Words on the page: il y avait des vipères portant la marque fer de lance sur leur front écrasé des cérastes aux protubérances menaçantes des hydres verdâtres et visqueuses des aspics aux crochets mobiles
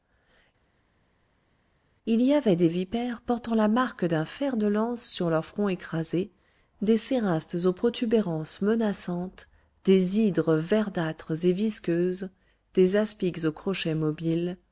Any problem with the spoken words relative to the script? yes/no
yes